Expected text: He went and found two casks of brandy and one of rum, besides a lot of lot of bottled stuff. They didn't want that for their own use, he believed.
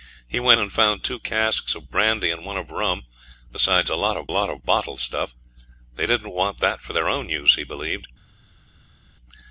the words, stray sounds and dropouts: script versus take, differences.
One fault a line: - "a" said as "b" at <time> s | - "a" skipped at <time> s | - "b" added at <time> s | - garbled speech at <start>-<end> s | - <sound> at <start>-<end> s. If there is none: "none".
none